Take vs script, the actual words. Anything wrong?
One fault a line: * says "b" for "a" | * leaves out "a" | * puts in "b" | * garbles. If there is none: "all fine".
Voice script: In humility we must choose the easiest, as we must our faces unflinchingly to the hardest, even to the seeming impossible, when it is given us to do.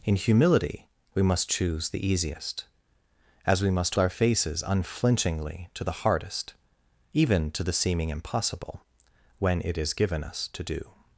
all fine